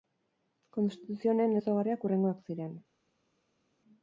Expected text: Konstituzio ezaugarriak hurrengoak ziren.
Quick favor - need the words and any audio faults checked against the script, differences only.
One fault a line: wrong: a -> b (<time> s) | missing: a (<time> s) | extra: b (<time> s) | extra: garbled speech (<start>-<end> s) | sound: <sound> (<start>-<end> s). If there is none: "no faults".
extra: honen (1.4 s)